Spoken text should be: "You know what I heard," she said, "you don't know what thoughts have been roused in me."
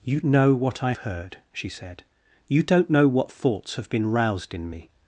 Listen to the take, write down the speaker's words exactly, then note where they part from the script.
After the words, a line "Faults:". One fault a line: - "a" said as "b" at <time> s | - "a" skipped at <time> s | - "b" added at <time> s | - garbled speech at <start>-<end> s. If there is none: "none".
"You know what I heard," she said, "you don't know what thoughts have been roused in me."
Faults:
none